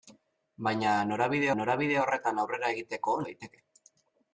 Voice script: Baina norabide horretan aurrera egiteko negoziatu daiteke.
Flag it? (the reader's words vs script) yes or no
yes